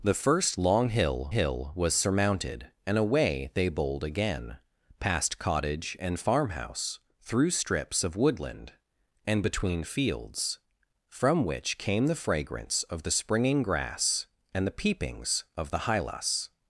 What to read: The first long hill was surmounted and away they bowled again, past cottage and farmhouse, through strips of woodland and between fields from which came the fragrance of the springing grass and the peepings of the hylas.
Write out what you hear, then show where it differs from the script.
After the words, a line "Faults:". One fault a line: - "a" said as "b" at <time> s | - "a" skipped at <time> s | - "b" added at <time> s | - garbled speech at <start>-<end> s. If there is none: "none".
The first long hill hill was surmounted and away they bowled again, past cottage and farmhouse, through strips of woodland and between fields from which came the fragrance of the springing grass and the peepings of the hylas.
Faults:
- "hill" added at 1.3 s